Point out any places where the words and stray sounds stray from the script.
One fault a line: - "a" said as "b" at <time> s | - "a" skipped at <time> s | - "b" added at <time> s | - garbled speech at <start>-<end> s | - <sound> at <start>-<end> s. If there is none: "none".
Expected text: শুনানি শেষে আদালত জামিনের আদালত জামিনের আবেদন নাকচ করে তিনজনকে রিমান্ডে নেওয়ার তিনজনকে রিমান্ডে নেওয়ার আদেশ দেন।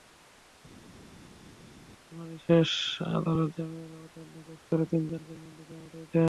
- "আদালত জামিনের" skipped at 3.9 s
- "তিনজনকে রিমান্ডে নেওয়ার" skipped at 5.9 s